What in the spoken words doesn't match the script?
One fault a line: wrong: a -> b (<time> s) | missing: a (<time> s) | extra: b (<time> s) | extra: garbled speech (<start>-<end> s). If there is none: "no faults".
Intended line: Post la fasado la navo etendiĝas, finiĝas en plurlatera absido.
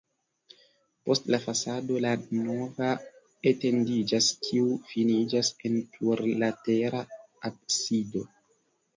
extra: kiu (4.5 s)